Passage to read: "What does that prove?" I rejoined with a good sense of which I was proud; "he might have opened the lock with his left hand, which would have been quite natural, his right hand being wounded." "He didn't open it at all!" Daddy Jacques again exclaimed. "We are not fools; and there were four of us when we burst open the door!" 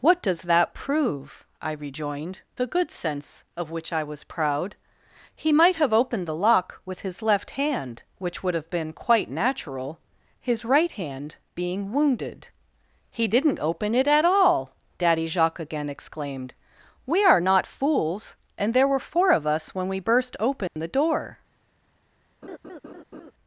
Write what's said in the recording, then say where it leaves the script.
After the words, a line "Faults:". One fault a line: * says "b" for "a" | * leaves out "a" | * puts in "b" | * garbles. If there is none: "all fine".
"What does that prove?" I rejoined a good sense of which I was proud; "he might have opened the lock with his left hand, which would have been quite natural, his right hand being wounded." "He didn't open it at all!" Daddy Jacques again exclaimed. "We are not fools; and there were four of us when we burst open the door!"
Faults:
* leaves out "with"